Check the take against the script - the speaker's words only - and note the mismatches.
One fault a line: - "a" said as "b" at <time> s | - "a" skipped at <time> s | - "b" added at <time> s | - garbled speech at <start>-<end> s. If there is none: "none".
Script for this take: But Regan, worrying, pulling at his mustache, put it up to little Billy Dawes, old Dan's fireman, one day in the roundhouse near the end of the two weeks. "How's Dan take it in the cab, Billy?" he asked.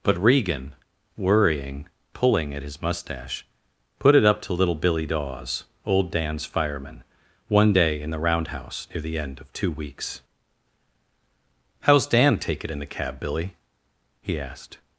- "the" skipped at 9.5 s